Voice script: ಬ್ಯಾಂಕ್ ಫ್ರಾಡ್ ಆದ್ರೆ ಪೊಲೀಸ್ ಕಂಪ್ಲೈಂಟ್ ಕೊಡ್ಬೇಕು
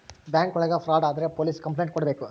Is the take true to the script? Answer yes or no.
no